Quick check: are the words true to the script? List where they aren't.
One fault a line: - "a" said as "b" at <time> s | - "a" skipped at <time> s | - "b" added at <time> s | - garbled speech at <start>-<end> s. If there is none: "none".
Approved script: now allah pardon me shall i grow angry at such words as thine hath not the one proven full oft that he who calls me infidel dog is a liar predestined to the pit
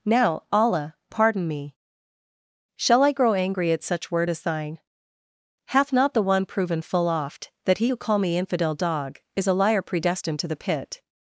- "words" said as "word" at 4.1 s
- "calls" said as "call" at 8.0 s